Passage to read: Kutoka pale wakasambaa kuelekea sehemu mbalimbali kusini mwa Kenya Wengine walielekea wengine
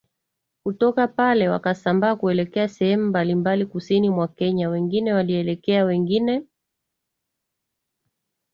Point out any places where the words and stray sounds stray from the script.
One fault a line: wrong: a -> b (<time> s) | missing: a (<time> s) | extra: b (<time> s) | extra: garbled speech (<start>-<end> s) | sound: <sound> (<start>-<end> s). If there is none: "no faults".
no faults